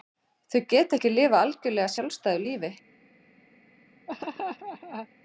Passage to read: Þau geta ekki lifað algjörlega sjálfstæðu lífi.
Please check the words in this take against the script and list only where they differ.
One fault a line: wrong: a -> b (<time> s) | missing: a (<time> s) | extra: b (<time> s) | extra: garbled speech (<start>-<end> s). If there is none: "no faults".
no faults